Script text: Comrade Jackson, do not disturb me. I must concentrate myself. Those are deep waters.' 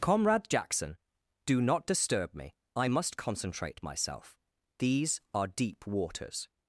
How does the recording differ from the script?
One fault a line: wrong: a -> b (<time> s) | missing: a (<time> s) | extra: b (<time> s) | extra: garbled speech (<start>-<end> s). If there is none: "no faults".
wrong: Those -> These (4.8 s)